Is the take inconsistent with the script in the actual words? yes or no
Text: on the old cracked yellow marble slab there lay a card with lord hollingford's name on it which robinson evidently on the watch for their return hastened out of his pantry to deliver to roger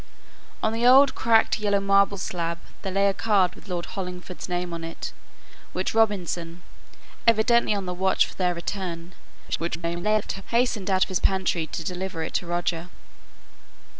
yes